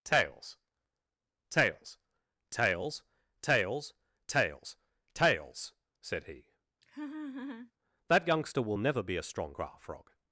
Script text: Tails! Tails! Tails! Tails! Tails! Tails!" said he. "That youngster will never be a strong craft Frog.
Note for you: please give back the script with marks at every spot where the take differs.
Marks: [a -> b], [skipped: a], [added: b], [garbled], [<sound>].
Tails! Tails! Tails! Tails! Tails! Tails!" said he. [laugh] "That youngster will never be a strong craft Frog.